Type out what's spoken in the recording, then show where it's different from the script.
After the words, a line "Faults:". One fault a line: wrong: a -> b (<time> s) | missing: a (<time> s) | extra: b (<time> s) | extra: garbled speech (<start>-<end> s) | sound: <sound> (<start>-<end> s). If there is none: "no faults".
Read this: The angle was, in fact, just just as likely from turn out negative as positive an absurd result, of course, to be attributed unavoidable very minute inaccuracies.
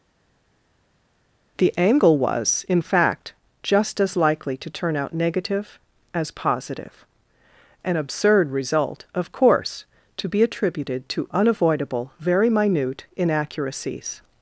The angle was, in fact, just as likely to turn out negative as positive an absurd result, of course, to be attributed to unavoidable very minute inaccuracies.
Faults:
missing: just (4.0 s)
wrong: from -> to (4.6 s)
extra: to (11.1 s)